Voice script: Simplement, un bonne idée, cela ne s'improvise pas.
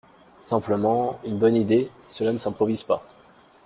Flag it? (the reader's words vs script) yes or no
yes